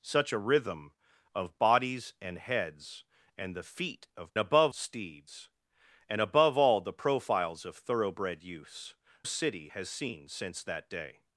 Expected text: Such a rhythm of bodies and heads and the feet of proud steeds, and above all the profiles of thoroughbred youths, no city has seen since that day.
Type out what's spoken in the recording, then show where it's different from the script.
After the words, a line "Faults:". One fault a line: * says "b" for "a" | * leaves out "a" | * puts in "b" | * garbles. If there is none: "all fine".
Such a rhythm of bodies and heads and the feet of above steeds, and above all the profiles of thoroughbred youths, city has seen since that day.
Faults:
* says "above" for "proud"
* leaves out "no"